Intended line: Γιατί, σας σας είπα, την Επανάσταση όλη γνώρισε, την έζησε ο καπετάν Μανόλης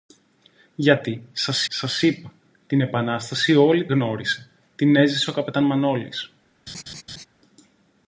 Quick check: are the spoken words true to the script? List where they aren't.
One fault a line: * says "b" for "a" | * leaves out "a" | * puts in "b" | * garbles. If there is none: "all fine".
all fine